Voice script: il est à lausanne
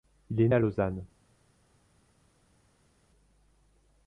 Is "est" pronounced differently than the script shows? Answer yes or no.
no